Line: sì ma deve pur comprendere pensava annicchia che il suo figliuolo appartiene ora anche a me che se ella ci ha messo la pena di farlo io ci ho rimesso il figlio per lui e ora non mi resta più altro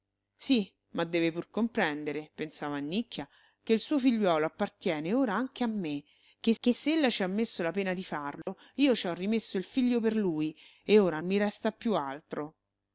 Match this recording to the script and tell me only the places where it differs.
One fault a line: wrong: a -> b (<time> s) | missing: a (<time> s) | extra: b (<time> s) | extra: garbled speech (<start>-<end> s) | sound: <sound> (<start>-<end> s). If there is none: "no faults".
extra: che (6.6 s)
sound: dropout (8.4-8.5 s)
missing: non (11.2 s)